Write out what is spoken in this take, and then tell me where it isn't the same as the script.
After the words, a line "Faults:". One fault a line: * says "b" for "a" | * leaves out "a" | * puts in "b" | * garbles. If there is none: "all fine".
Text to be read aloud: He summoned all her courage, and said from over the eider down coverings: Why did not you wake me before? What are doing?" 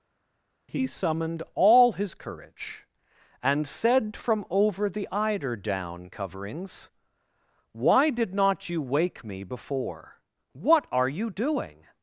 He summoned all his courage, and said from over the eider down coverings: Why did not you wake me before? What are you doing?"
Faults:
* says "his" for "her"
* puts in "you"